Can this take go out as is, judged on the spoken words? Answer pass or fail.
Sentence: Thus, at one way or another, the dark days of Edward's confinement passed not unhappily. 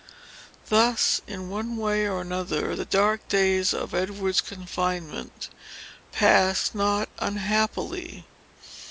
fail